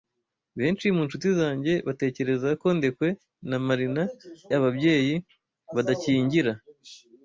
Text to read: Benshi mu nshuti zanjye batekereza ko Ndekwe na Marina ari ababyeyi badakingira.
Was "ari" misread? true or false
true